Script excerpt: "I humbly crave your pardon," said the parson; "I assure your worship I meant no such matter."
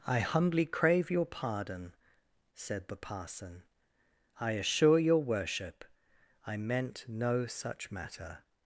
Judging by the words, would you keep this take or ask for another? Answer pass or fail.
pass